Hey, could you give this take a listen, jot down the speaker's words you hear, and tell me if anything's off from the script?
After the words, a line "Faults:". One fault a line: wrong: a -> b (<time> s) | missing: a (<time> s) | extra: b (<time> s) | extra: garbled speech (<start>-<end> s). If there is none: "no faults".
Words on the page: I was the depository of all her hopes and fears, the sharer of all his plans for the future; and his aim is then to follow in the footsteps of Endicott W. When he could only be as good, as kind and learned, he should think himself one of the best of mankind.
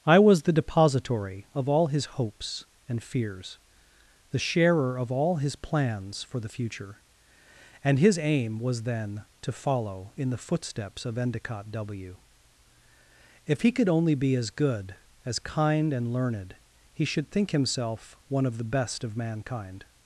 I was the depository of all his hopes and fears, the sharer of all his plans for the future; and his aim was then to follow in the footsteps of Endicott W. If he could only be as good, as kind and learned, he should think himself one of the best of mankind.
Faults:
wrong: her -> his (1.9 s)
wrong: is -> was (8.6 s)
wrong: When -> If (13.4 s)